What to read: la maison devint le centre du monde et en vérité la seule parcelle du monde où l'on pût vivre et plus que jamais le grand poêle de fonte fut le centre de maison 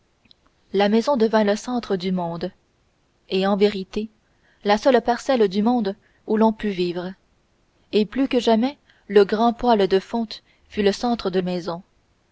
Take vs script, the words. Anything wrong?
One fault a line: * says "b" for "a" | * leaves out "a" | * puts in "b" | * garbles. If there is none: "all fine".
all fine